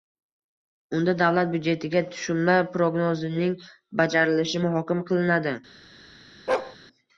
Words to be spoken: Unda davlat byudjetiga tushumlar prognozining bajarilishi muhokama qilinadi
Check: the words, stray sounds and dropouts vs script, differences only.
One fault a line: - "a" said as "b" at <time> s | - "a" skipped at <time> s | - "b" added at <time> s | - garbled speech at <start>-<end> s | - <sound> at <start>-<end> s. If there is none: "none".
- bark at 6.5-6.8 s